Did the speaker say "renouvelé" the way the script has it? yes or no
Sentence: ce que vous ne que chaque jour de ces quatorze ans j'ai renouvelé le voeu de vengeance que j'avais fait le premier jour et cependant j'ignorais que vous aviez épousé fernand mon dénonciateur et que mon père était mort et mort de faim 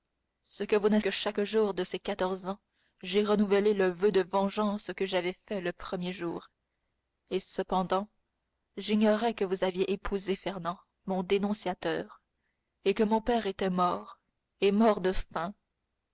yes